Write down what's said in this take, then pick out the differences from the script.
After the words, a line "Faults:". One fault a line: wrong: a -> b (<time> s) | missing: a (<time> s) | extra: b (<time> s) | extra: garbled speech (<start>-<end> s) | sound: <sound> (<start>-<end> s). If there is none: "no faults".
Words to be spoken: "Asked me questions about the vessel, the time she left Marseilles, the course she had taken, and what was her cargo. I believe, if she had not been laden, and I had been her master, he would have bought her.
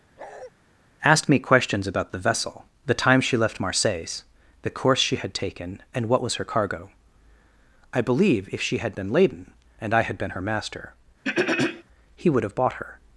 "Asked me questions about the vessel, the time she left Marseilles, the course she had taken, and what was her cargo. I believe, if she had been laden, and I had been her master, he would have bought her.
Faults:
sound: bark (0.2-0.5 s)
missing: not (9.0 s)
sound: throat clearing (11.2-11.8 s)